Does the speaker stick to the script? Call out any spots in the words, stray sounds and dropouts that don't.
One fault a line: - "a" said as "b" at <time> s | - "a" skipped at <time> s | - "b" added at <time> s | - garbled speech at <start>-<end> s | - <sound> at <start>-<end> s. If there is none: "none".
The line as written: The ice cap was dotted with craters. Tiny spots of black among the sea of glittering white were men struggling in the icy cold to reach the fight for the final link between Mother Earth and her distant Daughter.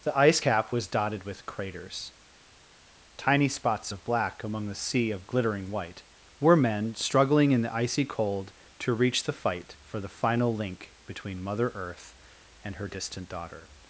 none